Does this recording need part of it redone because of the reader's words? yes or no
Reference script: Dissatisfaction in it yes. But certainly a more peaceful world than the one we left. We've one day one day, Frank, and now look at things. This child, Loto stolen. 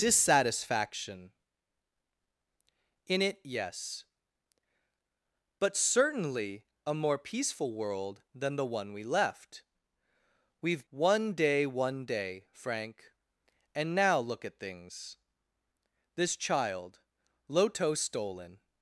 no